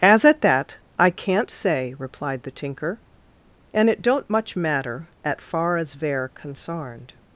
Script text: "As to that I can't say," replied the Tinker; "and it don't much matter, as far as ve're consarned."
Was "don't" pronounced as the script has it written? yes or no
yes